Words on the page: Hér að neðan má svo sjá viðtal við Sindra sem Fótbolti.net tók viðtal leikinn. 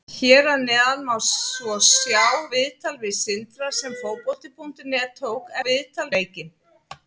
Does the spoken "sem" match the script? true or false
true